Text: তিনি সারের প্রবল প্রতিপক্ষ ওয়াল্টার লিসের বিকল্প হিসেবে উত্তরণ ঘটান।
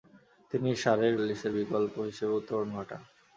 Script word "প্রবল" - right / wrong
wrong